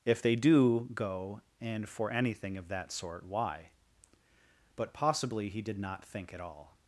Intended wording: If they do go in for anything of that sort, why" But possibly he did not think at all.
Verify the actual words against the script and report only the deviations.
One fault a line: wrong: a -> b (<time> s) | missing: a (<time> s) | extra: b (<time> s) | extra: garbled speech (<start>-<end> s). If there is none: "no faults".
wrong: in -> and (1.6 s)